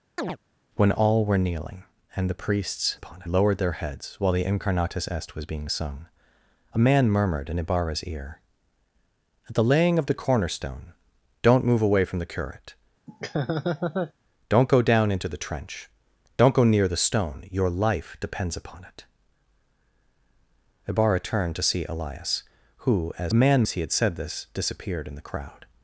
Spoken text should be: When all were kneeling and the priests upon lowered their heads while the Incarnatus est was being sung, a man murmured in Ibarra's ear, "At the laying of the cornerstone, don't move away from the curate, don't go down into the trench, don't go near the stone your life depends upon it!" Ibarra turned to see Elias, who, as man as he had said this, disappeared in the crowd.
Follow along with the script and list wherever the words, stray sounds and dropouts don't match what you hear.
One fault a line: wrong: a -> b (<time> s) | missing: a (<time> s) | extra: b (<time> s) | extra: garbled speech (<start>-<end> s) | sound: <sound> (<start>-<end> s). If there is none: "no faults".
sound: chirp (0.2-0.4 s)
sound: laugh (13.1-14.1 s)